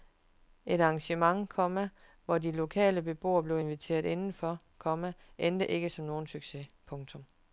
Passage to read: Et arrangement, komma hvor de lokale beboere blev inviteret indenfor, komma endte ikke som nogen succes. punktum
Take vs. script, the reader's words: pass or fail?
pass